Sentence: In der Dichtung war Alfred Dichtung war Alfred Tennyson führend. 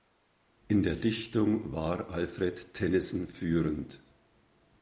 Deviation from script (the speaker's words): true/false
true